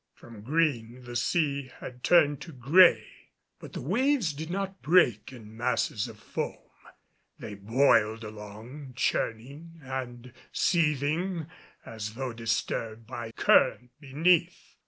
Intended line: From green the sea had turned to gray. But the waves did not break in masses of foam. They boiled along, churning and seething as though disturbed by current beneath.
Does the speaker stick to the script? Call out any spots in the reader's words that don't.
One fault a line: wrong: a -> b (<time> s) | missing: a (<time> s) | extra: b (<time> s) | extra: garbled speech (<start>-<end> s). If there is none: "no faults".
no faults